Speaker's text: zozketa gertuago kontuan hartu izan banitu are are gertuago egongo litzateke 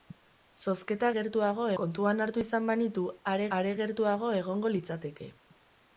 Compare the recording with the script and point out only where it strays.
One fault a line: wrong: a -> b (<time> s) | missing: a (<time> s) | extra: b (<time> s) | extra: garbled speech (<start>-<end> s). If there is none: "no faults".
no faults